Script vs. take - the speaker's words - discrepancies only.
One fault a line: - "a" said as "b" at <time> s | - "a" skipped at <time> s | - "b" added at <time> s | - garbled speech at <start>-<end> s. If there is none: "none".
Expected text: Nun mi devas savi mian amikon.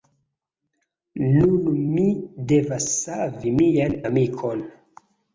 none